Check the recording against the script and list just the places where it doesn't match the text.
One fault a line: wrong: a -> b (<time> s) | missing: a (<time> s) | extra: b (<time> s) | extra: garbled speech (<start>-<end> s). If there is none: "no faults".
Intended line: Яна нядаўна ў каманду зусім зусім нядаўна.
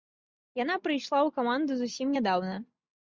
wrong: нядаўна -> прыйшла (0.9 s)
missing: зусім (2.1 s)